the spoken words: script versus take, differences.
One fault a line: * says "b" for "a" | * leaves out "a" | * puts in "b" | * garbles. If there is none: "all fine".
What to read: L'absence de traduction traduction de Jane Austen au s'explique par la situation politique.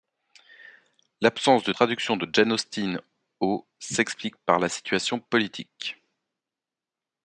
* leaves out "traduction"